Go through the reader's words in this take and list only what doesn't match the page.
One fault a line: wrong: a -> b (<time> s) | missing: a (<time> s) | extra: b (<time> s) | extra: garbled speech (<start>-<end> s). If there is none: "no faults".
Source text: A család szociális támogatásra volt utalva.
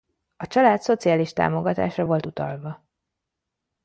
no faults